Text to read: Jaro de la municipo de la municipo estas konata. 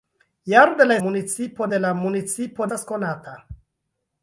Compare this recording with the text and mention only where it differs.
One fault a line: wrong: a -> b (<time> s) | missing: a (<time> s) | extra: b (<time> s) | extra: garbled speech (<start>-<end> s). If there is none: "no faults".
no faults